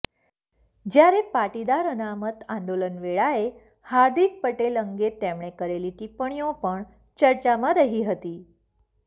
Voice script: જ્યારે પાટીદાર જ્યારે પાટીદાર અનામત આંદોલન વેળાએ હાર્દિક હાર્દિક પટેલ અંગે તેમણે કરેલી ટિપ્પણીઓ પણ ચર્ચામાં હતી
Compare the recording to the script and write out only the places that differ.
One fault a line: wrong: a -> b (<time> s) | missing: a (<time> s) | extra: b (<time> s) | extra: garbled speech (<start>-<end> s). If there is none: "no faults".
missing: જ્યારે પાટીદાર (1.9 s)
missing: હાર્દિક (4.4 s)
extra: રહી (7.8 s)